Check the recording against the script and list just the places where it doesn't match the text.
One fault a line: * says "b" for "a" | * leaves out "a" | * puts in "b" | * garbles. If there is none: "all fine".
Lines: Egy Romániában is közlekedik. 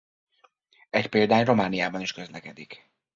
* puts in "példány"